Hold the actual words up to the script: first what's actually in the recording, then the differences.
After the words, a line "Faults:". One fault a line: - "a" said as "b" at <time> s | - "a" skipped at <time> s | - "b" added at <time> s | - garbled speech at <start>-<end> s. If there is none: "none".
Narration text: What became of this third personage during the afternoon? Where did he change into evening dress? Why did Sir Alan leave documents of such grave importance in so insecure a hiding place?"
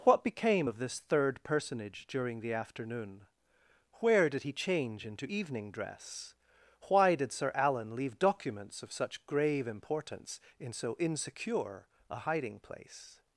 What became of this third personage during the afternoon? Where did he change into evening dress? Why did Sir Alan leave documents of such grave importance in so insecure a hiding place?"
Faults:
none